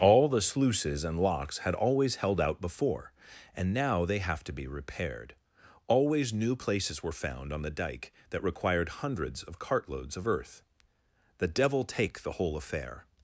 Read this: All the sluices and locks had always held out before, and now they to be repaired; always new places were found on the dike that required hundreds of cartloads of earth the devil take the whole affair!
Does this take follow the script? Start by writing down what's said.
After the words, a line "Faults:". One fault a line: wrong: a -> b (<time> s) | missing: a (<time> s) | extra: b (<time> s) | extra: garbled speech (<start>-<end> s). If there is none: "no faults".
All the sluices and locks had always held out before, and now they have to be repaired; always new places were found on the dike that required hundreds of cartloads of earth the devil take the whole affair!
Faults:
extra: have (4.2 s)